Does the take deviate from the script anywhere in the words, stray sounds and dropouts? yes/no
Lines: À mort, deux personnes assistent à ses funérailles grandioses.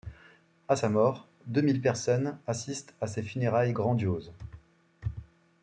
yes